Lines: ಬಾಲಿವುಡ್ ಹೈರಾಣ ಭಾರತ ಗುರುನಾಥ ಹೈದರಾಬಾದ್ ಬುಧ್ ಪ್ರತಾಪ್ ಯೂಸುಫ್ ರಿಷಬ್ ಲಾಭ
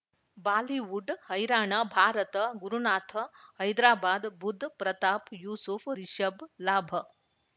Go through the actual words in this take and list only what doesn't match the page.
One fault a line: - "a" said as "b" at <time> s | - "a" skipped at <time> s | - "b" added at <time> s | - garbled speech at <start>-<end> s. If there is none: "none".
none